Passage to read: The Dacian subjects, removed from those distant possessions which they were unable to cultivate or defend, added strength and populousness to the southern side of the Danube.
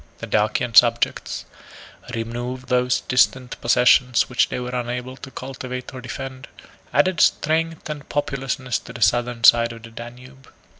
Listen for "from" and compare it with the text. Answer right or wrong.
wrong